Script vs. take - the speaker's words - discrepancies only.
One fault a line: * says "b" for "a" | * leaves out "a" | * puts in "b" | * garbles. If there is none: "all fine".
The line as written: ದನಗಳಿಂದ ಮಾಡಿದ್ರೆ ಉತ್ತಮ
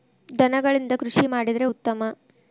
* puts in "ಕೃಷಿ"